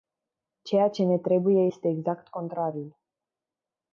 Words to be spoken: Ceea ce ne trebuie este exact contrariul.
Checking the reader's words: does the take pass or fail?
pass